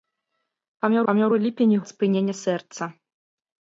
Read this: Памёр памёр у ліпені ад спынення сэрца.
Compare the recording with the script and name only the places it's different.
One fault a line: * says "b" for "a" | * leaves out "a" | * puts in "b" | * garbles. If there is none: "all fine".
all fine